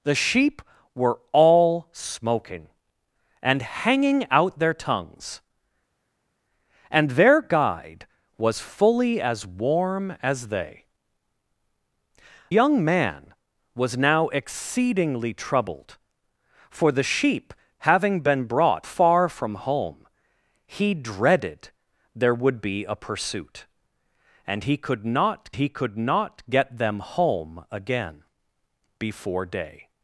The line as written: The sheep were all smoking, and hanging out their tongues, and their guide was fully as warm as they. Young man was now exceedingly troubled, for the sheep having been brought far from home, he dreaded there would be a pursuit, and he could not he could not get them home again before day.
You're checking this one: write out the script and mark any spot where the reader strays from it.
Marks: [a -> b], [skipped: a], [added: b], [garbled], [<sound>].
The sheep were all smoking, and hanging out their tongues, and their guide was fully as warm as they. Young man was now exceedingly troubled, for the sheep having been brought far from home, he dreaded there would be a pursuit, and he could not he could not get them home again before day.